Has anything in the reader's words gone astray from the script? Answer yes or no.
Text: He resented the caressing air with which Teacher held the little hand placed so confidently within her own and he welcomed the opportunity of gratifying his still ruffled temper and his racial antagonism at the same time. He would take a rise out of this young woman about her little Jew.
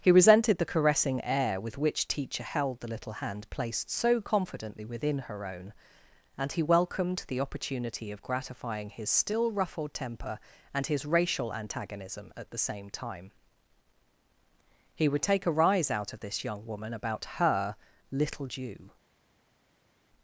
no